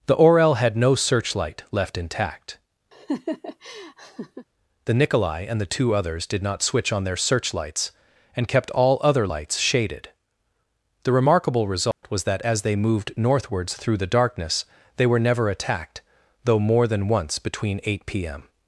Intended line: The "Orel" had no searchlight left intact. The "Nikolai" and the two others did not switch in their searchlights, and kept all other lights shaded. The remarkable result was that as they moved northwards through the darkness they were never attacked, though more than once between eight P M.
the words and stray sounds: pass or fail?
fail